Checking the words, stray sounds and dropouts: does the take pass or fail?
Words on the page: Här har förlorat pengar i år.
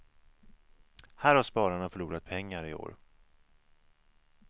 fail